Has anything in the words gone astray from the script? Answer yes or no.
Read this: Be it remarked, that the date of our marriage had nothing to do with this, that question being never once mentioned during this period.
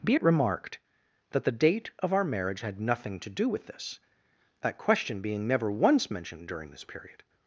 no